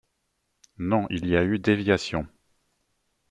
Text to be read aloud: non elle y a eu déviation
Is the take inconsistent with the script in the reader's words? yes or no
yes